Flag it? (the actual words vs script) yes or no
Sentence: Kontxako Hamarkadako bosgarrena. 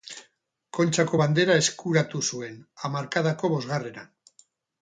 yes